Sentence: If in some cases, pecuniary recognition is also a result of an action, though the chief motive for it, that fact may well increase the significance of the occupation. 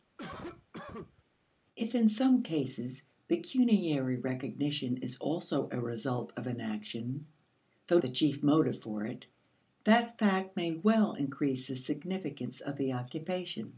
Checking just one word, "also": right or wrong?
right